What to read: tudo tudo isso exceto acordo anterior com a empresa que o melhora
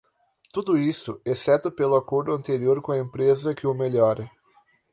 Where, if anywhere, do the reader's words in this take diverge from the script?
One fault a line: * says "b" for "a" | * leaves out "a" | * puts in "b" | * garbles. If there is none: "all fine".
* leaves out "tudo"
* puts in "pelo"